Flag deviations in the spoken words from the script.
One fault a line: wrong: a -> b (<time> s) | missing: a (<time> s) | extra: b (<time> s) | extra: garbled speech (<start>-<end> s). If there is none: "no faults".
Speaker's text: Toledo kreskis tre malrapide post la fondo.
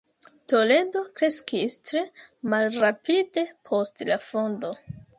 no faults